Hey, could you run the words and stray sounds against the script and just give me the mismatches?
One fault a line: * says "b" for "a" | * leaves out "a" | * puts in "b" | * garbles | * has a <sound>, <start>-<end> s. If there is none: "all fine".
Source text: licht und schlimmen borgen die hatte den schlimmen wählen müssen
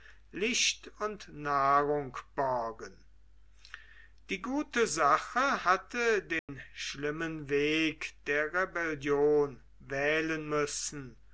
* says "nahrung" for "schlimmen"
* puts in "gute sache"
* has a dropout, 6.4-6.5 s
* puts in "weg der rebellion"